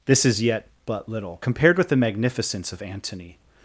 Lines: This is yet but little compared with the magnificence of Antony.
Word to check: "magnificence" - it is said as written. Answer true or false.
true